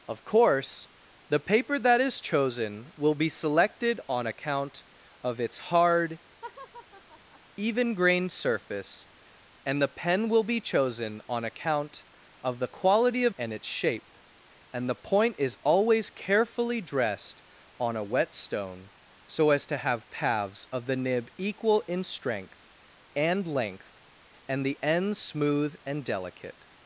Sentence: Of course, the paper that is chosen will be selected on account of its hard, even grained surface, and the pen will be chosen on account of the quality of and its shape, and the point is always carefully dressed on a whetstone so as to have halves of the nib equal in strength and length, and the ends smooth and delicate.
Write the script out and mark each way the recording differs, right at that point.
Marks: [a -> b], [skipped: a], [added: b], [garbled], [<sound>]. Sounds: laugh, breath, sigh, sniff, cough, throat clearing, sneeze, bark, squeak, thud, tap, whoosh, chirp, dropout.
Of course, the paper that is chosen will be selected on account of its hard, [laugh] even grained surface, and the pen will be chosen on account of the quality of and its shape, and the point is always carefully dressed on a whetstone so as to have halves of the nib equal in strength and length, and the ends smooth and delicate.